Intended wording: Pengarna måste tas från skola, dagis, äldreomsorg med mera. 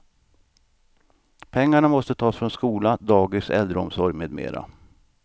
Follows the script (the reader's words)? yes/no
yes